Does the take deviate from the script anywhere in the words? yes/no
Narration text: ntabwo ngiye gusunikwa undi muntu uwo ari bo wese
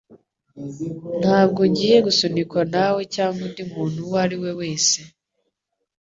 yes